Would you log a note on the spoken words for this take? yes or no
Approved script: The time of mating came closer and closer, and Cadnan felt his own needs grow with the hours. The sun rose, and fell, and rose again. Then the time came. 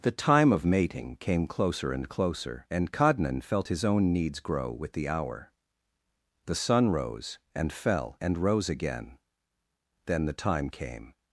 yes